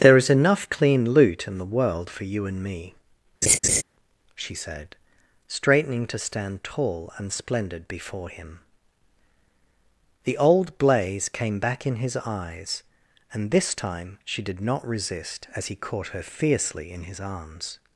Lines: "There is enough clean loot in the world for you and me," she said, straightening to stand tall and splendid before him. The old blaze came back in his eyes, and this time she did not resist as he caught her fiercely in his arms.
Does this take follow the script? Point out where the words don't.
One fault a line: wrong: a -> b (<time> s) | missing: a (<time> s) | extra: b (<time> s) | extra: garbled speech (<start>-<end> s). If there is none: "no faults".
no faults